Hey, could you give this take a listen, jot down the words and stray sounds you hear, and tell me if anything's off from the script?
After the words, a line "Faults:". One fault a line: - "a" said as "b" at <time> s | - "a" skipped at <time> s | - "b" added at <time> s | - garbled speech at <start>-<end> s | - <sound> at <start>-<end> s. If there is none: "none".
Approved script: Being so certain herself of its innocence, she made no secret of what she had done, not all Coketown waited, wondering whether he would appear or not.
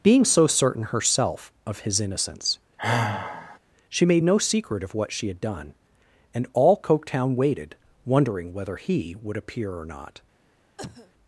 Being so certain herself of his innocence, she made no secret of what she had done, and all Coketown waited, wondering whether he would appear or not.
Faults:
- "its" said as "his" at 1.8 s
- sigh at 2.8-3.6 s
- "not" said as "and" at 6.3 s
- cough at 10.8-11.1 s